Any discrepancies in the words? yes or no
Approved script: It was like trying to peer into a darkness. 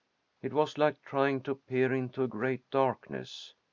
yes